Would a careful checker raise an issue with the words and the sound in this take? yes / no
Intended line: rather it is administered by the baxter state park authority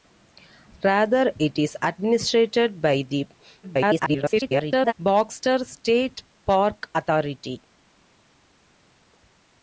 yes